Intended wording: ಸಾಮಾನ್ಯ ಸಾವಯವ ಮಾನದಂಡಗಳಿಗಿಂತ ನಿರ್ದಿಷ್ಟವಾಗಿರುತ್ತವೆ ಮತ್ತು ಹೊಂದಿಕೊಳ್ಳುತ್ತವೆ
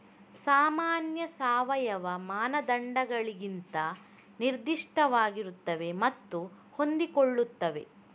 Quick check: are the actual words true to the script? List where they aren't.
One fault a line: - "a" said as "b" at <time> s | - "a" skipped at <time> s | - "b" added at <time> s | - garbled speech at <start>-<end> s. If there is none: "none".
none